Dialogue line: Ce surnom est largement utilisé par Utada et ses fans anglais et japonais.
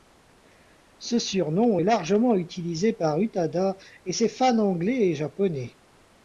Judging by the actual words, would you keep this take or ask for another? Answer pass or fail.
pass